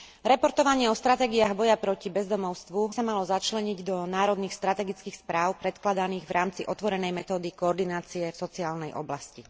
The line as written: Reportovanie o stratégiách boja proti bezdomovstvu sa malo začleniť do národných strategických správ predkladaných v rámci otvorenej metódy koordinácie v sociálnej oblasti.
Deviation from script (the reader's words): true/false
false